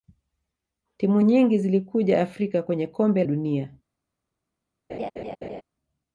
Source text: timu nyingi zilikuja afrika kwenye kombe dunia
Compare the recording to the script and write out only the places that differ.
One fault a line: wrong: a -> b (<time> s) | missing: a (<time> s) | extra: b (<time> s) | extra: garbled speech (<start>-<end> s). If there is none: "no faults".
no faults